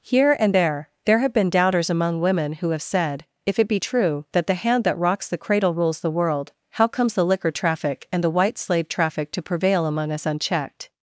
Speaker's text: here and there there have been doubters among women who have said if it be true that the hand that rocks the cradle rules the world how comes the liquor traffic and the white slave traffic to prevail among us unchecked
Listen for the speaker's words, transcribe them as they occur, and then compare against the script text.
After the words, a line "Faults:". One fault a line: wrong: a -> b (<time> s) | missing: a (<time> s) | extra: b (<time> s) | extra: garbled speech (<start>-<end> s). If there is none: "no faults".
here and there there have been doubters among women who have said if it be true that the hand that rocks the cradle rules the world how comes the liquor traffic and the white slave traffic to prevail among us unchecked
Faults:
no faults